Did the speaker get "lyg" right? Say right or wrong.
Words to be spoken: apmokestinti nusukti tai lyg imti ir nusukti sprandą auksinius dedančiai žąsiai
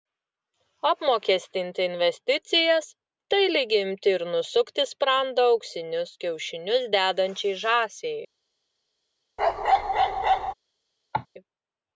right